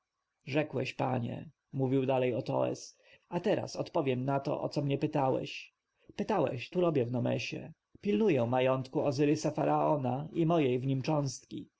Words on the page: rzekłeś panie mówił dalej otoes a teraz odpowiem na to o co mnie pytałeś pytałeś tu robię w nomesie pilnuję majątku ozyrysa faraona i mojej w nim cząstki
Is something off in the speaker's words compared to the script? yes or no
no